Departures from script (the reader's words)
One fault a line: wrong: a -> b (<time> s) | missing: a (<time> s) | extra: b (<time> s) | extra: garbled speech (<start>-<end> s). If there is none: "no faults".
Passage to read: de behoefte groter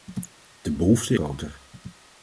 no faults